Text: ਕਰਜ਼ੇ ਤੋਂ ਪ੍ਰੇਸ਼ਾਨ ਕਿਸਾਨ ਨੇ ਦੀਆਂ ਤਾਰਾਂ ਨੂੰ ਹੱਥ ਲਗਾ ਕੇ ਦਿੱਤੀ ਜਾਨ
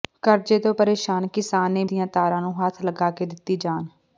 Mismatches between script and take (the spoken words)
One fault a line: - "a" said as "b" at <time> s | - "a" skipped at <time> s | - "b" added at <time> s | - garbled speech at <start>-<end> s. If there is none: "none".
none